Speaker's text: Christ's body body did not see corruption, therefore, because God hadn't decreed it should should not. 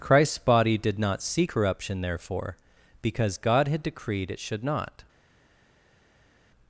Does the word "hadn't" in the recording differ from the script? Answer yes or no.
yes